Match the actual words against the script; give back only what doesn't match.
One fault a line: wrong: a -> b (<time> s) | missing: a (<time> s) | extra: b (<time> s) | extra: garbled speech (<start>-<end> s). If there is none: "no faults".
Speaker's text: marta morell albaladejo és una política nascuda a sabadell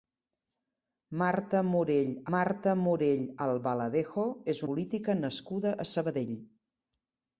extra: marta morell (2.4 s)
missing: una (4.6 s)